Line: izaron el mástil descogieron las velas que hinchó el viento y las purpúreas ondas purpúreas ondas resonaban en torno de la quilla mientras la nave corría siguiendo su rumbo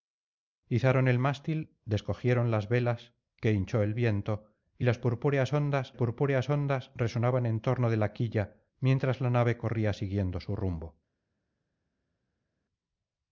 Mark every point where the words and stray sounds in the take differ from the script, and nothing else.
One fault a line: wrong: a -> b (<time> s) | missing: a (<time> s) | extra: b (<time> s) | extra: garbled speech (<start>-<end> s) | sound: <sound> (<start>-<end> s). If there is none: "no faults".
no faults